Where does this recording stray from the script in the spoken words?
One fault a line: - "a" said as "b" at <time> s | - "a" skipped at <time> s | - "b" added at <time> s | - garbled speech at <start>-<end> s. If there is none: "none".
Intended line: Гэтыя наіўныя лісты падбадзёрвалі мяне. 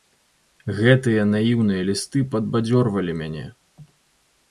none